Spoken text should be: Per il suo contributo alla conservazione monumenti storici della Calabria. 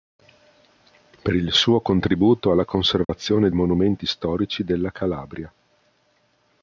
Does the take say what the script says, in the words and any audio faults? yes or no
no